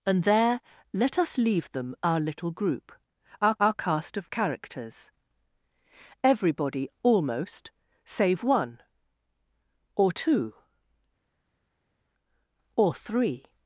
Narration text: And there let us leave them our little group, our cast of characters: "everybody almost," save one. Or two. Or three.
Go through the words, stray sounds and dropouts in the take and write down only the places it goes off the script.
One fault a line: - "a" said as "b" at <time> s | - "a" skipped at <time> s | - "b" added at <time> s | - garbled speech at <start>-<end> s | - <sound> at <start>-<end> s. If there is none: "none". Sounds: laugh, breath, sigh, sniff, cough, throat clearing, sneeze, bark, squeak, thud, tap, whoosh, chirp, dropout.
- "our" added at 3.6 s